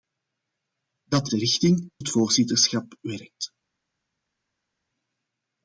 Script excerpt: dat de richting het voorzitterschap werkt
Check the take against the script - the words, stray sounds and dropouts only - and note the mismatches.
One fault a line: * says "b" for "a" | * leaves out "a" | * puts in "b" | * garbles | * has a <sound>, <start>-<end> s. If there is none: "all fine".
all fine